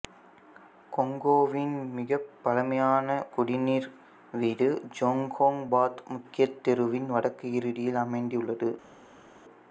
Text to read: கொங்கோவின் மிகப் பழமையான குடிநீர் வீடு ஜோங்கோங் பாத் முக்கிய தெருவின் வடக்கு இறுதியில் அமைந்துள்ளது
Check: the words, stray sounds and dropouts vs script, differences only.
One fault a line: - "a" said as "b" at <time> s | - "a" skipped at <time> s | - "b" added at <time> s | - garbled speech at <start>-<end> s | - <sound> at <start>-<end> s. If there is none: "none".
none